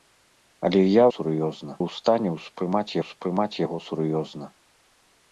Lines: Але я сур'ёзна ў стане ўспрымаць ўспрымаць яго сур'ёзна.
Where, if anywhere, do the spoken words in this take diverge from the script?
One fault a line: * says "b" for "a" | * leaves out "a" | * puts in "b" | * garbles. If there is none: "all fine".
all fine